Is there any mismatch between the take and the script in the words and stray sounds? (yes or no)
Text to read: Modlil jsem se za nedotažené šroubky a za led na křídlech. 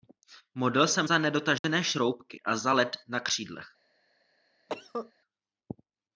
yes